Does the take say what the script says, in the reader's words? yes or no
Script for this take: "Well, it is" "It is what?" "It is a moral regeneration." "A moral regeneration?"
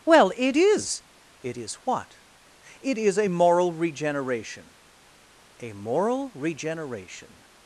yes